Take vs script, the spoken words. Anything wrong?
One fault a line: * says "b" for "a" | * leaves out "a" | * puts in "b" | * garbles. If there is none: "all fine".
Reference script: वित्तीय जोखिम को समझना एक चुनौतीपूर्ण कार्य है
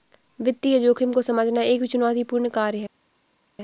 all fine